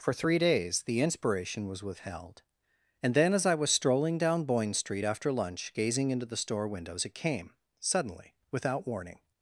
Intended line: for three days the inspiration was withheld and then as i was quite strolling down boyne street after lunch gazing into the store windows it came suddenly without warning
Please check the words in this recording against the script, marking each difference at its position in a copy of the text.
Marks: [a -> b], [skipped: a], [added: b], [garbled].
for three days the inspiration was withheld and then as i was [skipped: quite] strolling down boyne street after lunch gazing into the store windows it came suddenly without warning